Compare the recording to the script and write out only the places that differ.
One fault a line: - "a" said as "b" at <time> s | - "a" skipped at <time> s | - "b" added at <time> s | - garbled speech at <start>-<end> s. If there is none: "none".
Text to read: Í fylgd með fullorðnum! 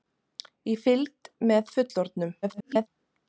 - garbled speech at 2.4-2.9 s